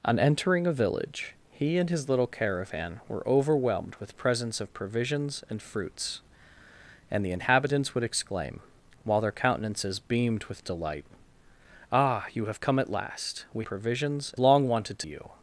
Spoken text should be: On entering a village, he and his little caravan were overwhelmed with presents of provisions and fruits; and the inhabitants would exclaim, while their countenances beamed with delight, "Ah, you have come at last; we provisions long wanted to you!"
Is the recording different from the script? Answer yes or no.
no